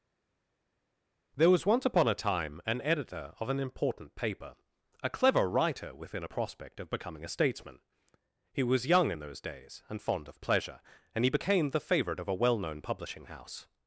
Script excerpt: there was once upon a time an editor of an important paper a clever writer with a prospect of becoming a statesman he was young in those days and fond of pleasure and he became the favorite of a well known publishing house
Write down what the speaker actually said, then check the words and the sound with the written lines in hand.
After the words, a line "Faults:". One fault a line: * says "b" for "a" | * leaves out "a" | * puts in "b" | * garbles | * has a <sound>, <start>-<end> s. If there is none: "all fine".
there was once upon a time an editor of an important paper a clever writer within a prospect of becoming a statesman he was young in those days and fond of pleasure and he became the favorite of a well known publishing house
Faults:
* says "within" for "with"